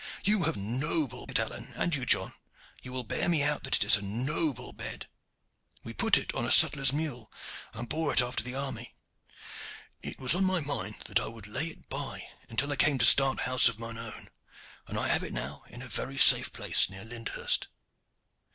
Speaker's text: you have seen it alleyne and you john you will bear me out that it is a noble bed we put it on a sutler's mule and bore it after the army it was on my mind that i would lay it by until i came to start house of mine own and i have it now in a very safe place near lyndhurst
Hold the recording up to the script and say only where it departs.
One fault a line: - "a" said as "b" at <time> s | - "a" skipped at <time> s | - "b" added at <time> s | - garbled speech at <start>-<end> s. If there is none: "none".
- "seen" said as "noble" at 0.6 s